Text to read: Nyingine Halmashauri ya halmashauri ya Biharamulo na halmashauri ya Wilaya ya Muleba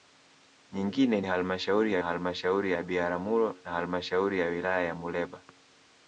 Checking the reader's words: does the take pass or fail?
pass